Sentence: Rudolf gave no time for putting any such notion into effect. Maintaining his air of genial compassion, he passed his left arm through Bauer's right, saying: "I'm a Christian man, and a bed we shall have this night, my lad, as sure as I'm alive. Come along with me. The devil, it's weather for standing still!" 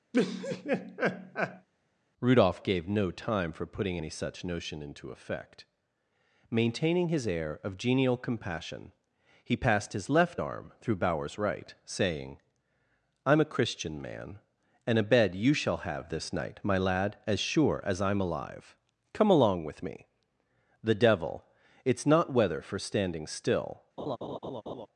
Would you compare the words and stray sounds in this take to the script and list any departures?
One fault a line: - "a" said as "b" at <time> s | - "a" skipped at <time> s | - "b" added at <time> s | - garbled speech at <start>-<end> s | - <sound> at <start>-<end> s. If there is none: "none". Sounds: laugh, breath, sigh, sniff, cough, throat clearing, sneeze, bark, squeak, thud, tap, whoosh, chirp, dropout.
- laugh at 0.1-1.7 s
- "we" said as "you" at 15.3 s
- "not" added at 22.1 s
- laugh at 24.0-24.9 s